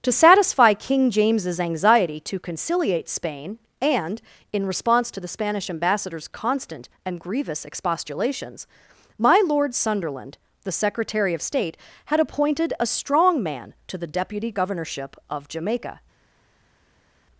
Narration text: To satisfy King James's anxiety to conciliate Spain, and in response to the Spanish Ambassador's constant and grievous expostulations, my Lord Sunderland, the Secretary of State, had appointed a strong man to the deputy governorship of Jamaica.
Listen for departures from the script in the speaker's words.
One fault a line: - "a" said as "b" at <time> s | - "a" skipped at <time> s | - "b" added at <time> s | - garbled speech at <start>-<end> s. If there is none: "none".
none